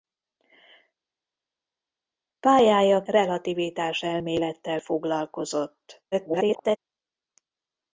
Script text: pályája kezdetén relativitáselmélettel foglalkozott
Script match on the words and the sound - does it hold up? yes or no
no